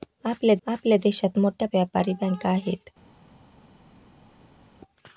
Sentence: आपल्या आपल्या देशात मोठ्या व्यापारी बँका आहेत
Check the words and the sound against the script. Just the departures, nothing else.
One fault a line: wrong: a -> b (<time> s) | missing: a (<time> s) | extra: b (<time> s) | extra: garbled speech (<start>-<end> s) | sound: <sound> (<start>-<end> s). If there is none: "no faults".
no faults